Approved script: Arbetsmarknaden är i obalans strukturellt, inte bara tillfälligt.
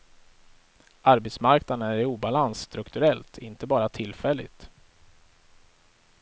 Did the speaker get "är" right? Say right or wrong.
right